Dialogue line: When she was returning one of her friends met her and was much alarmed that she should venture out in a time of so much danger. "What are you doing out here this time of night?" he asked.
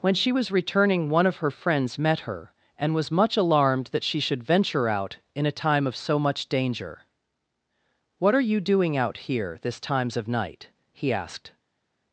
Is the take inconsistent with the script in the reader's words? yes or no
yes